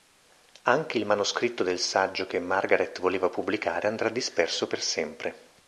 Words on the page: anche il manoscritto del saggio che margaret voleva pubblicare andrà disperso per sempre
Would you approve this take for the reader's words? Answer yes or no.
yes